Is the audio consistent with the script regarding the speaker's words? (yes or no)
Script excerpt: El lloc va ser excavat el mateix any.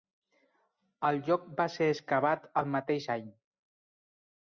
yes